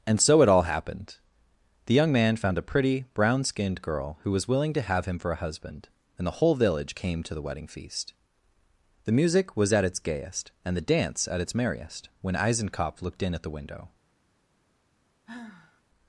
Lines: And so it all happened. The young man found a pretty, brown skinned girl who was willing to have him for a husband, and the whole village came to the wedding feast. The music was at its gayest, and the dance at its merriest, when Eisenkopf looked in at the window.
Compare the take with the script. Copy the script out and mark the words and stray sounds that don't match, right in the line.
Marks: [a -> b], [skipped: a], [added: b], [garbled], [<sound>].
And so it all happened. The young man found a pretty, brown skinned girl who was willing to have him for a husband, and the whole village came to the wedding feast. The music was at its gayest, and the dance at its merriest, when Eisenkopf looked in at the window. [sigh]